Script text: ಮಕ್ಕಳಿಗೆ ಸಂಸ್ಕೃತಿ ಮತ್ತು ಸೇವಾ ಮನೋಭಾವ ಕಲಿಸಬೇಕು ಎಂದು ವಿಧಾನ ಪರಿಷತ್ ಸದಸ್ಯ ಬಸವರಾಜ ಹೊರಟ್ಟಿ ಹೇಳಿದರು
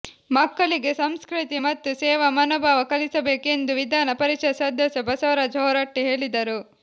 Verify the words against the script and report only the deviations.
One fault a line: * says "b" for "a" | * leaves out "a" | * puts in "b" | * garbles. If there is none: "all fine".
all fine